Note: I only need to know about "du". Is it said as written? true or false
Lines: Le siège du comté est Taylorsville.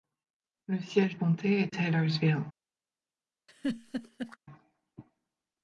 false